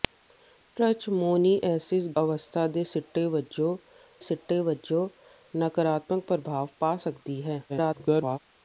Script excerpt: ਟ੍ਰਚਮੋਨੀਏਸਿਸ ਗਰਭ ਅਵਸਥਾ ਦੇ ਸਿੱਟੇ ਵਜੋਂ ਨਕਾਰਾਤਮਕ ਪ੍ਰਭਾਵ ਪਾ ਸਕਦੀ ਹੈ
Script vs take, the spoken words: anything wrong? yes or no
yes